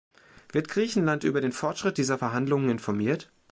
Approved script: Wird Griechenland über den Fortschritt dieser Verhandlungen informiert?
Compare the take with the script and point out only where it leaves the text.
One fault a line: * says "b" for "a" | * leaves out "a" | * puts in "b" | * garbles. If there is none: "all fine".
all fine